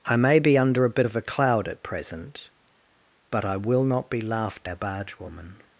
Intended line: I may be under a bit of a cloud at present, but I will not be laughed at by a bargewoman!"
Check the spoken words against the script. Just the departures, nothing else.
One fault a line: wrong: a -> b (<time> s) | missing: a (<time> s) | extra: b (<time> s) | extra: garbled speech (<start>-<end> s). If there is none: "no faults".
missing: at by (4.7 s)